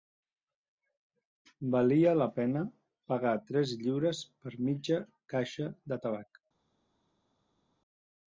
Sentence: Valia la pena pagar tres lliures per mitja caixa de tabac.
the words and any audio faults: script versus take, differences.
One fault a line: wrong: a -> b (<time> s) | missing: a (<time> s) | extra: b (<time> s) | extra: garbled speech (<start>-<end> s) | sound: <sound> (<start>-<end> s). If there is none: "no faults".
no faults